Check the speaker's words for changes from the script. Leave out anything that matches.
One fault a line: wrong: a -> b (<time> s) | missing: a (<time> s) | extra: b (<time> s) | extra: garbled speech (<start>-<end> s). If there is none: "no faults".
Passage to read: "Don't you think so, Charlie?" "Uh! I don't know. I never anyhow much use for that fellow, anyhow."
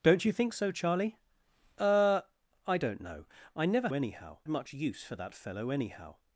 no faults